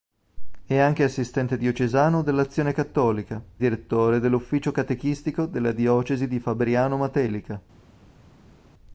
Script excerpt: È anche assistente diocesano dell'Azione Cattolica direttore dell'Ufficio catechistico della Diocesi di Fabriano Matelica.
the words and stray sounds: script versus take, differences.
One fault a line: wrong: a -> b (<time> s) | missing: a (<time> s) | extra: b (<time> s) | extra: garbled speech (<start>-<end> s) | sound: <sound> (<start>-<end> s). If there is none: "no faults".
no faults